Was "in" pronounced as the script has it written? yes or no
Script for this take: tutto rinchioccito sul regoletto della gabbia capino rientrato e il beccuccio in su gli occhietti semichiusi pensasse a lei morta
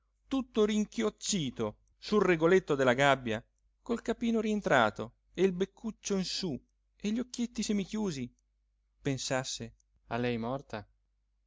yes